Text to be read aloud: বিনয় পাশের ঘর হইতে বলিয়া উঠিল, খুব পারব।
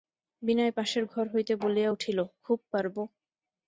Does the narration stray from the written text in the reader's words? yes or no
no